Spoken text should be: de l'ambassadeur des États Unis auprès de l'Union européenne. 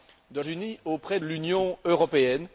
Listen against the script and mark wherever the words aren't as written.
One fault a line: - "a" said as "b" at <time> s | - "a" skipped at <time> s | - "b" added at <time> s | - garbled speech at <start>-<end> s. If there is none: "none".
- "l'ambassadeur des États" skipped at 0.4 s
- "de" skipped at 1.2 s